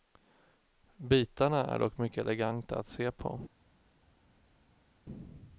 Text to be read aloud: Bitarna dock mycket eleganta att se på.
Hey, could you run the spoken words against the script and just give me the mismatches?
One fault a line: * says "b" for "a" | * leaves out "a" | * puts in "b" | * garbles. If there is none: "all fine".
* puts in "är"